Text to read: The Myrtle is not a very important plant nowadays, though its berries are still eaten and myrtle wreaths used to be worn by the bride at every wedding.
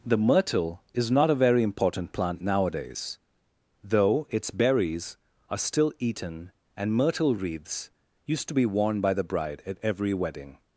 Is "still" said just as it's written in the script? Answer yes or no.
yes